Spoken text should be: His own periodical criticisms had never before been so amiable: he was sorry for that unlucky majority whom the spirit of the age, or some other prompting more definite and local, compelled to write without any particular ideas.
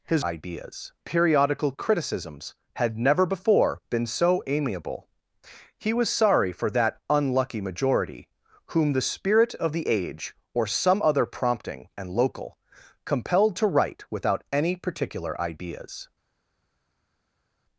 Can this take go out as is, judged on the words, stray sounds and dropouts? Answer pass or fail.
fail